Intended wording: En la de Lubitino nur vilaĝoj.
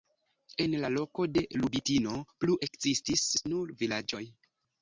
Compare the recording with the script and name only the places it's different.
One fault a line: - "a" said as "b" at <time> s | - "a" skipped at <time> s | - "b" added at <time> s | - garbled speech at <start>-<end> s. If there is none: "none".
- "loko" added at 0.9 s
- "plu ekzistis" added at 2.5 s